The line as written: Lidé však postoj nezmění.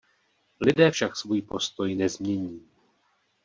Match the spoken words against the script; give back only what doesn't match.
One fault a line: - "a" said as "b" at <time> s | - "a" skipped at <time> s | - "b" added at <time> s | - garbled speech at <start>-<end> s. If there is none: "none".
- "svůj" added at 1.2 s